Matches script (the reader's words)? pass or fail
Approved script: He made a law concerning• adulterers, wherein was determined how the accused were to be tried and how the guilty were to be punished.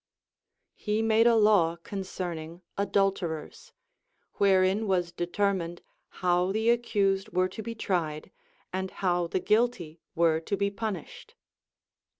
pass